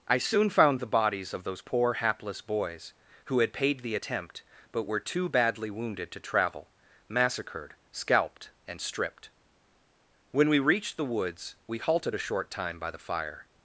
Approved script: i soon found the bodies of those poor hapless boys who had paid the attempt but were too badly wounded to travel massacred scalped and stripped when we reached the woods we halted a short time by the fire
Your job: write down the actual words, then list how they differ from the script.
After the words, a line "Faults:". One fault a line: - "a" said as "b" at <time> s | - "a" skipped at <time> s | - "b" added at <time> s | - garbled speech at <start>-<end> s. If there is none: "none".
i soon found the bodies of those poor hapless boys who had paid the attempt but were too badly wounded to travel massacred scalped and stripped when we reached the woods we halted a short time by the fire
Faults:
none